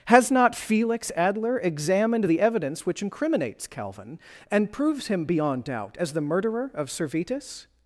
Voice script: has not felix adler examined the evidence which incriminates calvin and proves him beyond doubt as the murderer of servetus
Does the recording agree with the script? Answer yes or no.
yes